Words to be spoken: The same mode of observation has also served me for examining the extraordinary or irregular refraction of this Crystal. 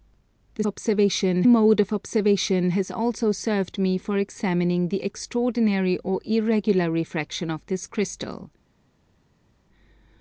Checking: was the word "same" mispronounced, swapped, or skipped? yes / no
yes